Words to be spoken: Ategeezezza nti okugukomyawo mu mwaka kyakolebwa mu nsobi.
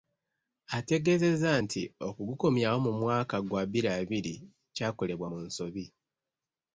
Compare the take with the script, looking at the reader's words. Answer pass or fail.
fail